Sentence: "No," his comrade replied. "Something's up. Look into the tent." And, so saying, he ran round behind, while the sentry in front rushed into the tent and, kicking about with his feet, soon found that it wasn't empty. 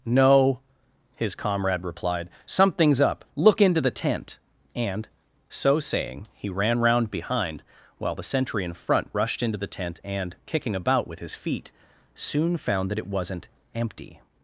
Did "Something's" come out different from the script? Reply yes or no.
no